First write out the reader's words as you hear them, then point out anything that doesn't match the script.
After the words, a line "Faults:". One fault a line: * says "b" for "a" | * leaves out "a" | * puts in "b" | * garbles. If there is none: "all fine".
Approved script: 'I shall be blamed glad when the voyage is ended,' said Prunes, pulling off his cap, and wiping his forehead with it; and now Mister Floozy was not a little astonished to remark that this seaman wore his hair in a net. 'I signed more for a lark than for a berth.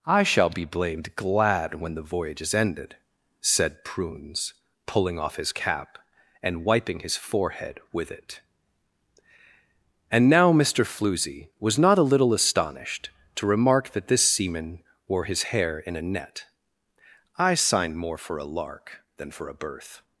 'I shall be blamed glad when the voyage is ended,' said Prunes, pulling off his cap, and wiping his forehead with it; and now Mister Floozy was not a little astonished to remark that this seaman wore his hair in a net. 'I signed more for a lark than for a berth.
Faults:
all fine